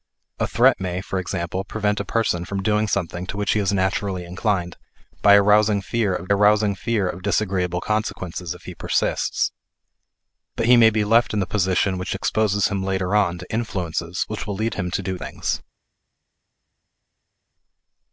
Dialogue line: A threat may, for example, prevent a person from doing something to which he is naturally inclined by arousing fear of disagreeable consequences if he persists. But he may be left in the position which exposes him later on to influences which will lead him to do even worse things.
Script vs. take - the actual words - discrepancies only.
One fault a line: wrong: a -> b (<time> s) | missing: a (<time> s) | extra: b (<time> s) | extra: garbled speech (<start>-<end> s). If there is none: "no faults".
extra: arousing fear of (6.3 s)
missing: even worse (15.2 s)